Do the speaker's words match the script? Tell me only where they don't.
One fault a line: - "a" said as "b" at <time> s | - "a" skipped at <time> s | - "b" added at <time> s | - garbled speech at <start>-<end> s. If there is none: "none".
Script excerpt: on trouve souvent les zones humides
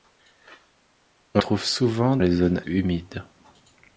none